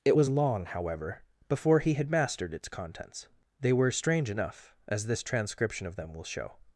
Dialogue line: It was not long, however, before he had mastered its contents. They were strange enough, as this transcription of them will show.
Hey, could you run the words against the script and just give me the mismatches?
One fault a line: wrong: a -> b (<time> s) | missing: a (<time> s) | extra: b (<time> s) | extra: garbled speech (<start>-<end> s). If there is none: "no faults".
missing: not (0.3 s)